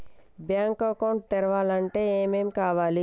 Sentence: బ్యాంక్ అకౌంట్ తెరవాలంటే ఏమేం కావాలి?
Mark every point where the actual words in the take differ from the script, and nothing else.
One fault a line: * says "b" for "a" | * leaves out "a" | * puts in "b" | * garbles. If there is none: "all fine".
all fine